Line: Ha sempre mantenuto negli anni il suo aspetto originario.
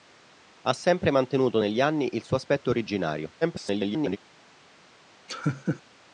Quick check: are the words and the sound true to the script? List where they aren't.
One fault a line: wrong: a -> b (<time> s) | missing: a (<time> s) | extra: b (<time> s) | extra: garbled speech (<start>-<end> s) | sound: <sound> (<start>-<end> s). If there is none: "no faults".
extra: garbled speech (3.4-4.2 s)
sound: laugh (5.3-5.8 s)